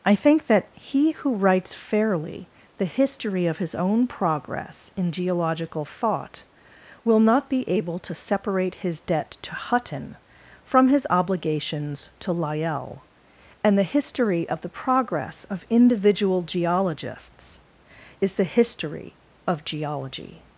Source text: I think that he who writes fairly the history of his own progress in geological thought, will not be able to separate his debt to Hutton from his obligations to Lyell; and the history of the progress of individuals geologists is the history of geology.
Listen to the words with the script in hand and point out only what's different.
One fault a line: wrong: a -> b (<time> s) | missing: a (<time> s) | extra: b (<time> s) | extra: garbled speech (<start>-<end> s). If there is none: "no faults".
wrong: individuals -> individual (15.7 s)